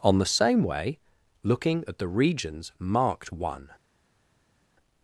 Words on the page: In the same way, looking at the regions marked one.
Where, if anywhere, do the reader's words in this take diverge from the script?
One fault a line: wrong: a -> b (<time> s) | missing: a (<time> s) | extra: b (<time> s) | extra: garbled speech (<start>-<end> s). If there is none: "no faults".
wrong: In -> On (0.0 s)